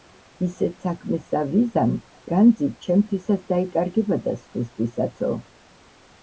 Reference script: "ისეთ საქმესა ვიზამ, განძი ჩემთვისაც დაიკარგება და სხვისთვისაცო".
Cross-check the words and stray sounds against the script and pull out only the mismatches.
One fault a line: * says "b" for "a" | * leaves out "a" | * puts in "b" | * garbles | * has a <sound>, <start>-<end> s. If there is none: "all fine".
all fine